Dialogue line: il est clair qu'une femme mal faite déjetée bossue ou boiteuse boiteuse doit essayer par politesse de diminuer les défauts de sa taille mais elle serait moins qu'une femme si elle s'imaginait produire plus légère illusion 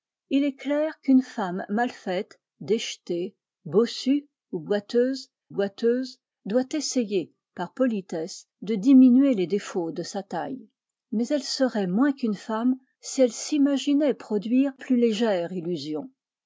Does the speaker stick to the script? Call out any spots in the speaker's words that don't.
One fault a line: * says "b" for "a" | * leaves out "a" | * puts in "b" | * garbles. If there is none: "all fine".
all fine